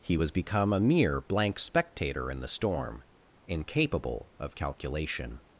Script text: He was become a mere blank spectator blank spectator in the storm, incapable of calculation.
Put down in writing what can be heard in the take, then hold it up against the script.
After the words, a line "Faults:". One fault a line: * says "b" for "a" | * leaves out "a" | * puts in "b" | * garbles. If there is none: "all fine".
He was become a mere blank spectator in the storm, incapable of calculation.
Faults:
* leaves out "blank spectator"